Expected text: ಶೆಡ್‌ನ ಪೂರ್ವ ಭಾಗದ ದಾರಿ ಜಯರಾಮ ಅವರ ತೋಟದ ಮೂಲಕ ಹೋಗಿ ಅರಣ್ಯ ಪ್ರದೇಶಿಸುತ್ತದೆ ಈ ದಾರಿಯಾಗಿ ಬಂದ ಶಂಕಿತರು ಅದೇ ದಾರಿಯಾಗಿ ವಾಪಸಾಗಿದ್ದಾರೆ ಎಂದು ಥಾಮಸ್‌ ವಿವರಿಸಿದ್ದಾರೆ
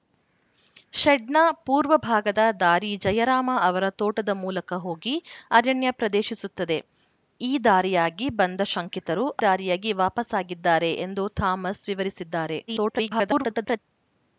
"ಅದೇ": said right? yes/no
no